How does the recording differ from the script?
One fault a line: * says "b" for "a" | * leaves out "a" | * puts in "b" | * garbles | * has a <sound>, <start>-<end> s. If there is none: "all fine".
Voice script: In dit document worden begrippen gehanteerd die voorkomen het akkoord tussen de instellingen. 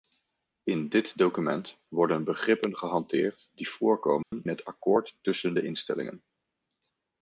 * has a dropout, 4.2-4.3 s